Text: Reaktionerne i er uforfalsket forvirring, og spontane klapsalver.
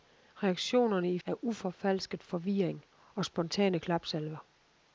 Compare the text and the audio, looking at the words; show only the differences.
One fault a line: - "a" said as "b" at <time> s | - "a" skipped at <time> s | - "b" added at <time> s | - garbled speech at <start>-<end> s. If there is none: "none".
none